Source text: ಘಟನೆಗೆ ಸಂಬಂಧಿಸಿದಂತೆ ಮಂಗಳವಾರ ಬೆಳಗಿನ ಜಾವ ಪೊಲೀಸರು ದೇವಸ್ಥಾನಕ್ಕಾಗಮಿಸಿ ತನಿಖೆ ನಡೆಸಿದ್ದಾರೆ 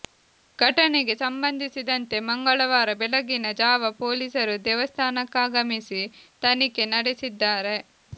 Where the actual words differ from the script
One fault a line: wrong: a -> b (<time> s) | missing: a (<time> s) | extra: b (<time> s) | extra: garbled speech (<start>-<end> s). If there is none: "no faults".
no faults